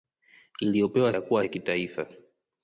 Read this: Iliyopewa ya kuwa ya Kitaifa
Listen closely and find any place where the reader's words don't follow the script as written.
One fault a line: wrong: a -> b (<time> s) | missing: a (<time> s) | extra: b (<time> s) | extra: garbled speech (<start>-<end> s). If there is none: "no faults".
no faults